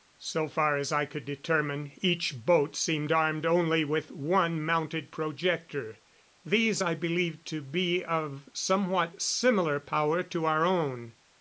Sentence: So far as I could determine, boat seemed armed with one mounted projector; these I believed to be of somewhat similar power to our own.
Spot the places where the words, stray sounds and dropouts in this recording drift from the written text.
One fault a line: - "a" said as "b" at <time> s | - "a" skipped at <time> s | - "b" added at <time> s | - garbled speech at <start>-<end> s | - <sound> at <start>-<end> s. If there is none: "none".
- "each" added at 2.0 s
- "only" added at 3.5 s